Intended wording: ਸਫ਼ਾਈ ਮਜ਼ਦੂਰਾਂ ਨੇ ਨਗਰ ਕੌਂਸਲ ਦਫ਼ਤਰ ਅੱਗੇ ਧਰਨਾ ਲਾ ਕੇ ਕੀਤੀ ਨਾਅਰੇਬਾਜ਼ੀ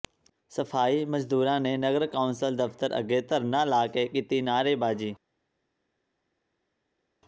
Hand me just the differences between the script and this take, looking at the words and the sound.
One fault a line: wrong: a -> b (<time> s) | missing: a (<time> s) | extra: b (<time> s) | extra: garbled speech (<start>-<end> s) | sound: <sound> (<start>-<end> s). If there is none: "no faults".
no faults